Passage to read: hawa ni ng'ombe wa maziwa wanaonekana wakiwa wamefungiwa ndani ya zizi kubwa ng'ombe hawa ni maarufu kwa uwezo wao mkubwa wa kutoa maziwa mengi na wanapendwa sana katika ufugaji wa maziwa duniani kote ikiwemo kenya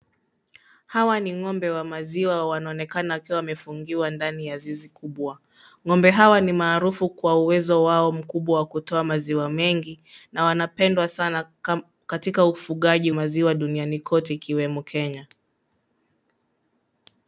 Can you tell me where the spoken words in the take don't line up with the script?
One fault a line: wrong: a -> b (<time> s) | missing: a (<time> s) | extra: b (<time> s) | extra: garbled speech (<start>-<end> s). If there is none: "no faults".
missing: wa (13.1 s)